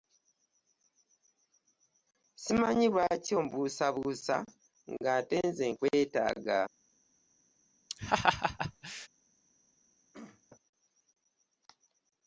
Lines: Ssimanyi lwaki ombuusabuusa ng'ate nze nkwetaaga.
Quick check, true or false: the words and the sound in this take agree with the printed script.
false